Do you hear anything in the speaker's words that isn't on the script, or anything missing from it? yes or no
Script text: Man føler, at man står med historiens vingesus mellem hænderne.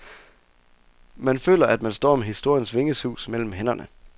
no